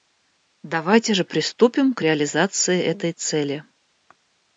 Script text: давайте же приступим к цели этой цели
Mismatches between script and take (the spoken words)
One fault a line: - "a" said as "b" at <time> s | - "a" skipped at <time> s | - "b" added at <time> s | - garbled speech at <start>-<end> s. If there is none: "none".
- "цели" said as "реализации" at 2.0 s